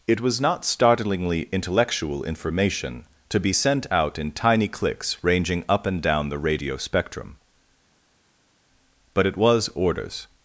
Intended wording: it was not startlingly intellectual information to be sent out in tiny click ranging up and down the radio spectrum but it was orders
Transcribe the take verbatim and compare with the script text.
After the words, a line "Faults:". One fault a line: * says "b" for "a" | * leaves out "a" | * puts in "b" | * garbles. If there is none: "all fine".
it was not startlingly intellectual information to be sent out in tiny clicks ranging up and down the radio spectrum but it was orders
Faults:
* says "clicks" for "click"